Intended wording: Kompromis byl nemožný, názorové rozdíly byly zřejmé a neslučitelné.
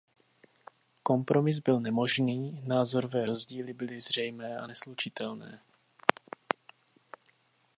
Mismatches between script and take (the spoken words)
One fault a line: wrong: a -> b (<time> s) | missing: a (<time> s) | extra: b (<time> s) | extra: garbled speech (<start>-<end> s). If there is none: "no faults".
no faults